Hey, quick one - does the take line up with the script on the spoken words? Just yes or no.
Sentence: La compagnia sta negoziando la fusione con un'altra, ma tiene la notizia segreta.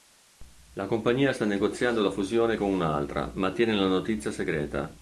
yes